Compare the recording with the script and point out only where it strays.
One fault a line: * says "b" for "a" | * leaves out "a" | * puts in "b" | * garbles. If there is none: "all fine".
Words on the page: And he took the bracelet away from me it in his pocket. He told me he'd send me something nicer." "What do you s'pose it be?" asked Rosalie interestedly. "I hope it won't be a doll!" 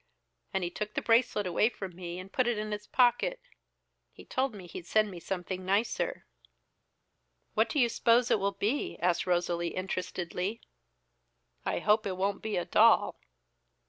* puts in "and put"
* puts in "will"